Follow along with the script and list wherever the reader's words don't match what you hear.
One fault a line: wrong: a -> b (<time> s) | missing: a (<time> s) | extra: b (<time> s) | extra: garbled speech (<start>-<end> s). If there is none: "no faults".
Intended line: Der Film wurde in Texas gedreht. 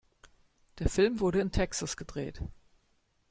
no faults